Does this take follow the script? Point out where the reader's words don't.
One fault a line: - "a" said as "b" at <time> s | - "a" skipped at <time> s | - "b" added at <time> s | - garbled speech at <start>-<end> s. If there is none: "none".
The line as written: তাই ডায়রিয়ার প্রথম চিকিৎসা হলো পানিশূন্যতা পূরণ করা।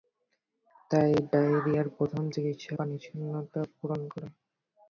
- "হলো" skipped at 2.7 s